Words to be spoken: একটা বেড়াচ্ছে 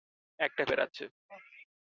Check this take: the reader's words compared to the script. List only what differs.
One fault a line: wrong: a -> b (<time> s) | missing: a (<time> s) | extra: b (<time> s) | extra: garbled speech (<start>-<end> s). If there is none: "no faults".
no faults